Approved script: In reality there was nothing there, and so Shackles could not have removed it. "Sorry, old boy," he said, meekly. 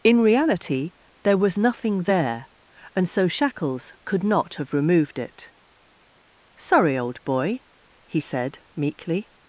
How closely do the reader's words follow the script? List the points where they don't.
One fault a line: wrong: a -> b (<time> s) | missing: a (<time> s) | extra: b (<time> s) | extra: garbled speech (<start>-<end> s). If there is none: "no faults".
no faults